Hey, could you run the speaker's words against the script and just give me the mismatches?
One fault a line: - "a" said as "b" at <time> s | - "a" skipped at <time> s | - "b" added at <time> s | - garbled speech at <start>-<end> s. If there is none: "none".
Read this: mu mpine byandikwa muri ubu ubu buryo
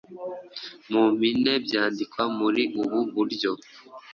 - "ubu" skipped at 3.0 s